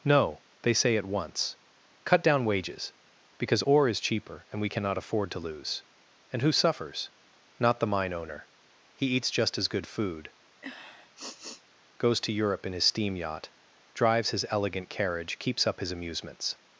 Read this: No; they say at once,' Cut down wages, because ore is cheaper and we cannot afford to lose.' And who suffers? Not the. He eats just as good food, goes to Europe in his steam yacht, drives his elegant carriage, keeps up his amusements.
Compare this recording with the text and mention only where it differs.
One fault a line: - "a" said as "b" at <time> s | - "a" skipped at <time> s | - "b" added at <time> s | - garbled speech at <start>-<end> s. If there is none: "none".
- "mine owner" added at 7.9 s